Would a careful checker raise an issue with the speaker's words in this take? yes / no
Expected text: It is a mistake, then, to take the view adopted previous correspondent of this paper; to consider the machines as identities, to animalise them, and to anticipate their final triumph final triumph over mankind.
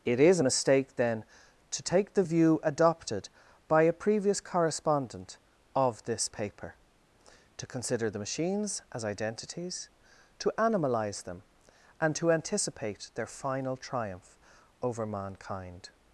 yes